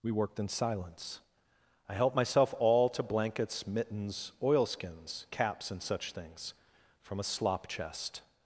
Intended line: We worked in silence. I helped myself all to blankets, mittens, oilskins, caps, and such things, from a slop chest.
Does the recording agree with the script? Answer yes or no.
yes